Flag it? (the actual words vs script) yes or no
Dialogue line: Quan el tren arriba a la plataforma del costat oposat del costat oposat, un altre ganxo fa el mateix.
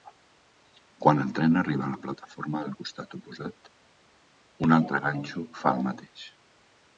yes